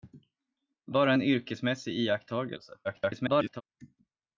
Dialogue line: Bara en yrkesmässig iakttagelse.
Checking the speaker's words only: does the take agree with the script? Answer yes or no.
no